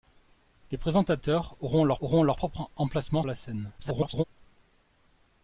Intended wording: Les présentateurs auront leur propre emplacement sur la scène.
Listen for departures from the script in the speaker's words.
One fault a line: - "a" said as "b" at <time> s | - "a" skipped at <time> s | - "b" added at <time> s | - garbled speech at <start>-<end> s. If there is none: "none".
- "auront leur" added at 2.0 s
- "sur" skipped at 3.2 s
- garbled speech at 3.8-4.2 s